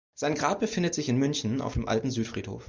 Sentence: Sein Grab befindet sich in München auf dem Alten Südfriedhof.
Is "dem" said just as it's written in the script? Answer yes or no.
yes